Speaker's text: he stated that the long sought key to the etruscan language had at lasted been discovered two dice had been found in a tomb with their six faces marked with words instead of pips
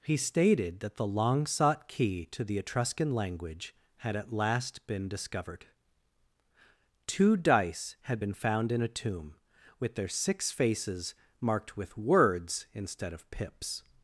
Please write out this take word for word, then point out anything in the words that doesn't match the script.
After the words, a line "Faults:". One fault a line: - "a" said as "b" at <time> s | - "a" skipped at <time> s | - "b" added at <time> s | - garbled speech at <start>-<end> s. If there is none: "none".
he stated that the long sought key to the etruscan language had at last been discovered two dice had been found in a tomb with their six faces marked with words instead of pips
Faults:
- "lasted" said as "last" at 4.3 s